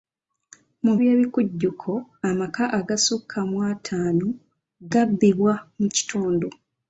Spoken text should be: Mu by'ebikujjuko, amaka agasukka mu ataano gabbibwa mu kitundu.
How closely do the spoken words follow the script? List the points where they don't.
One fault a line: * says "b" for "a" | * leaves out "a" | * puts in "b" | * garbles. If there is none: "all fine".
all fine